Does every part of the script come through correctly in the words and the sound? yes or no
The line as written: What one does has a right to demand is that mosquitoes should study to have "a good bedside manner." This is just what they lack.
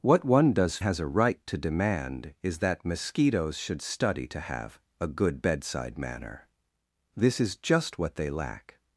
yes